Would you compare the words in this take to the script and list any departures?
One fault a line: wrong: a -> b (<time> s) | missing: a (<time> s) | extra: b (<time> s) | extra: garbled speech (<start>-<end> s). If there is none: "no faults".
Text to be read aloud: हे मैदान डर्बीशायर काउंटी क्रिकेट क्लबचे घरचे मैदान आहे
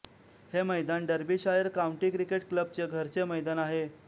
no faults